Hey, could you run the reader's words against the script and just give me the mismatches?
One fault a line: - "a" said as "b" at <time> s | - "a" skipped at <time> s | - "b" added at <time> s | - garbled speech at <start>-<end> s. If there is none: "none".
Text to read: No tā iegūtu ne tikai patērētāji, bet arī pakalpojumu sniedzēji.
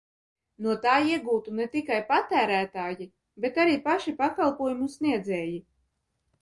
- "paši" added at 3.9 s